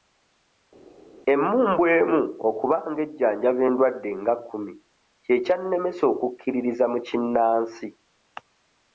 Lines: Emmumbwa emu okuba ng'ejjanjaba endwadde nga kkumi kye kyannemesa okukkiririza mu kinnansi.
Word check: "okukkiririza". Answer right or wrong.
right